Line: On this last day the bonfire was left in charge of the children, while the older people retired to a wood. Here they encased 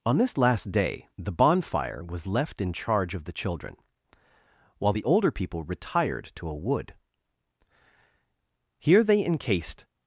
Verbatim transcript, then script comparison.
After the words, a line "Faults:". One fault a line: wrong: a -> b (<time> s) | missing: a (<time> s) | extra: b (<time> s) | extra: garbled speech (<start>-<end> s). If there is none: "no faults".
On this last day the bonfire was left in charge of the children, while the older people retired to a wood. Here they encased
Faults:
no faults